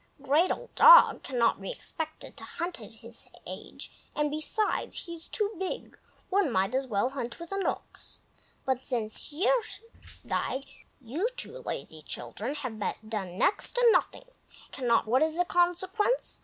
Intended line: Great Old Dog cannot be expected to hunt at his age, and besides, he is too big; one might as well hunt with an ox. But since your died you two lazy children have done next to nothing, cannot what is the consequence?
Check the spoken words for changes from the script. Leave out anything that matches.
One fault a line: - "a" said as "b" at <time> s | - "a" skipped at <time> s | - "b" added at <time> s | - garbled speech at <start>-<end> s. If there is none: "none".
none